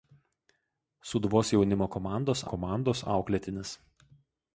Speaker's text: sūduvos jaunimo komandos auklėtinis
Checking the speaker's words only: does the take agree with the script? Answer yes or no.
no